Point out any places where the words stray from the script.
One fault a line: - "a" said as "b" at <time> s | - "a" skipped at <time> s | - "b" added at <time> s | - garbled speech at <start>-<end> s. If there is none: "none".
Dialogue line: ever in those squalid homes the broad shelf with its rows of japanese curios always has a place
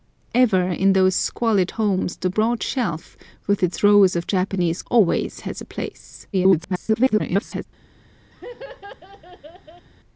- "curios" skipped at 4.8 s
- garbled speech at 6.3-7.7 s